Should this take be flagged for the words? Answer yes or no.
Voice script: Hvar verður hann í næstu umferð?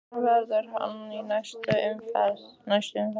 no